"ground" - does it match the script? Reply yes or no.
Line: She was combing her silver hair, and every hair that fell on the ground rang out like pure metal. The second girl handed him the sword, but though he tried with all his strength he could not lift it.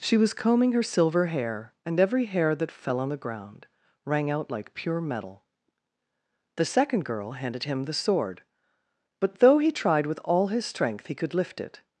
yes